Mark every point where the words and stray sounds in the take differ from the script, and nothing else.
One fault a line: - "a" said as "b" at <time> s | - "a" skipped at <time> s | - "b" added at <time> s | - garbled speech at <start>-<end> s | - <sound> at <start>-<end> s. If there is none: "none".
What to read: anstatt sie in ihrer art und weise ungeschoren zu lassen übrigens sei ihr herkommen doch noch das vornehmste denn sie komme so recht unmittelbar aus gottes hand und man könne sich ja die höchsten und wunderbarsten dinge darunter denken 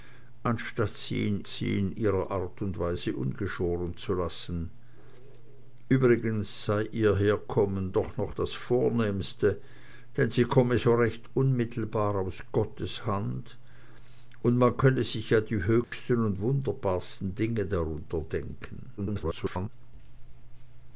- "sie in" added at 1.5 s
- dropout at 15.8-15.9 s
- garbled speech at 19.0-19.7 s